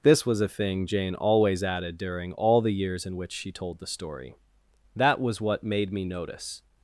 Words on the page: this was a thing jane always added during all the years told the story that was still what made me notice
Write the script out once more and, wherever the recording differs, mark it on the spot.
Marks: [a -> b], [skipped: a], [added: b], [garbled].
this was a thing jane always added during all the years [added: in which she] told the story that was [skipped: still] what made me notice